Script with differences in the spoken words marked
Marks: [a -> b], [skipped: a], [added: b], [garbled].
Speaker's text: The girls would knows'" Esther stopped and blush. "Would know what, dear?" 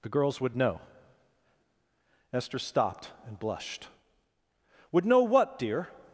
The girls would [knows'" -> know] Esther stopped and [blush. -> blushed] "Would know what, dear?"